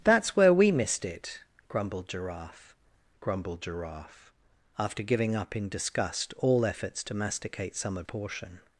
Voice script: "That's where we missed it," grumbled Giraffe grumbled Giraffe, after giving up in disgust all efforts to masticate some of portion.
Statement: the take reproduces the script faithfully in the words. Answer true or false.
true